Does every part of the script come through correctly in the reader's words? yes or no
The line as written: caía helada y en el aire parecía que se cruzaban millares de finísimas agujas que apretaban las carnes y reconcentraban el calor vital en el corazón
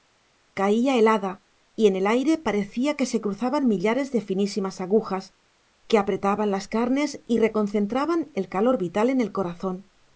yes